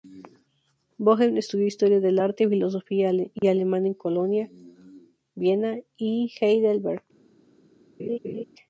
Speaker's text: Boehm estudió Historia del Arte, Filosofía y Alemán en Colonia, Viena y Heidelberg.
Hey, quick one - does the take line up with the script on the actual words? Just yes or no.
yes